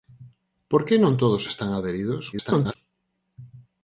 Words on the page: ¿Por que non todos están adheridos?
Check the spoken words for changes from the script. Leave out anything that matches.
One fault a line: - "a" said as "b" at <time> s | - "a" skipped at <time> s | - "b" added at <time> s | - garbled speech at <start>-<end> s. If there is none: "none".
- garbled speech at 2.3-2.8 s